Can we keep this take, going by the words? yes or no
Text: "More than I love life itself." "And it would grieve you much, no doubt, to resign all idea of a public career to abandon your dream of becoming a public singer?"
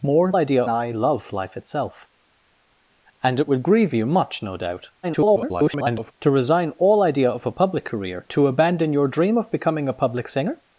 no